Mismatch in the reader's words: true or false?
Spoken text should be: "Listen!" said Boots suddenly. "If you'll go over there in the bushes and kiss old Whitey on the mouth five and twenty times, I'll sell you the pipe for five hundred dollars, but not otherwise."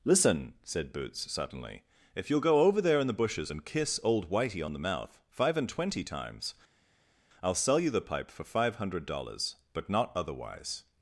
false